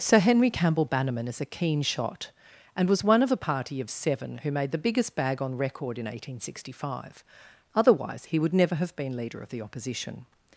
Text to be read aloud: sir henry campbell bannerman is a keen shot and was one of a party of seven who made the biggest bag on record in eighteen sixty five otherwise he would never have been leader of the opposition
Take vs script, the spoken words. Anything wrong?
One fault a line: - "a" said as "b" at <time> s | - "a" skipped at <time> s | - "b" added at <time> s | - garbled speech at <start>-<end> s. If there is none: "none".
none